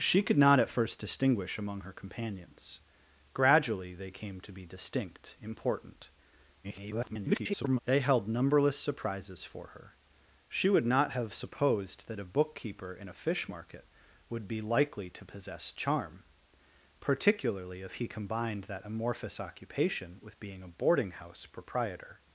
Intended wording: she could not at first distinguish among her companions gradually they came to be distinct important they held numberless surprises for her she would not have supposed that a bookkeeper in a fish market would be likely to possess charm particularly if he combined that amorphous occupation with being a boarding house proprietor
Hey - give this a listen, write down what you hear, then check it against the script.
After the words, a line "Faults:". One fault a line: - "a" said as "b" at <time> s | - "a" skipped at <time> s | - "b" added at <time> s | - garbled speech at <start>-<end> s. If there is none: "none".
she could not at first distinguish among her companions gradually they came to be distinct important [garbled] they held numberless surprises for her she would not have supposed that a bookkeeper in a fish market would be likely to possess charm particularly if he combined that amorphous occupation with being a boarding house proprietor
Faults:
- garbled speech at 6.6-7.8 s